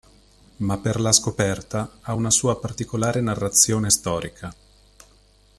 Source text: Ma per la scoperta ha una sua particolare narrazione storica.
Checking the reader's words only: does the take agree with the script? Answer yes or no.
yes